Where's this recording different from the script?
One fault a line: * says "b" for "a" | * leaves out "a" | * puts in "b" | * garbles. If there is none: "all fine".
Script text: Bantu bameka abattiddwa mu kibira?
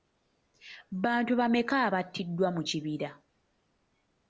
all fine